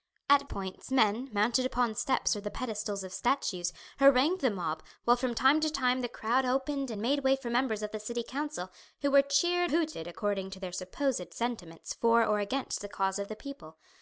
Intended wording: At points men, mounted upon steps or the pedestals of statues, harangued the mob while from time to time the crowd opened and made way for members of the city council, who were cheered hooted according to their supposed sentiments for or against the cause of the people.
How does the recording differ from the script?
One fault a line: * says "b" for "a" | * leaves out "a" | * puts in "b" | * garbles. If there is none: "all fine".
all fine